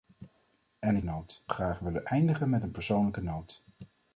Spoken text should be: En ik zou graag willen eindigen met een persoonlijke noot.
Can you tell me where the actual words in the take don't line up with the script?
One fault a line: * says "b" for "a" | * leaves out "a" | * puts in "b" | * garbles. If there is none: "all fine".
* says "noot" for "zou"